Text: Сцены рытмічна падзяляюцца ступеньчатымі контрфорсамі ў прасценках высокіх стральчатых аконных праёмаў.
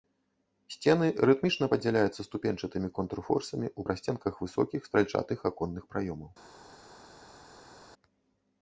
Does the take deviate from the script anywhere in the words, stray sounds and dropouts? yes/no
no